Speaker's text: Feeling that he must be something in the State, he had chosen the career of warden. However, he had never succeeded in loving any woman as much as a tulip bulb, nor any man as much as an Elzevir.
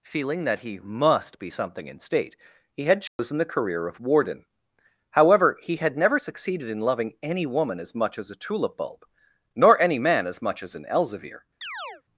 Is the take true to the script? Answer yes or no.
no